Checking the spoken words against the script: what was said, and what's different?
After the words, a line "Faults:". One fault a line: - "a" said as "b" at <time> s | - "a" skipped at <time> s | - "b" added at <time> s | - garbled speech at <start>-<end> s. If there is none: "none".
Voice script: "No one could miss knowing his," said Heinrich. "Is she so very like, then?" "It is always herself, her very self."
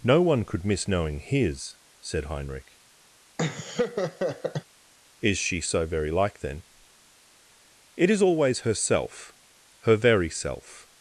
"No one could miss knowing his," said Heinrich. "Is she so very like, then?" "It is always herself, her very self."
Faults:
none